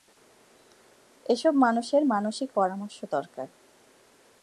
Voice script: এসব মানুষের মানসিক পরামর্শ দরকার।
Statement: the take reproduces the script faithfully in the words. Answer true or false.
true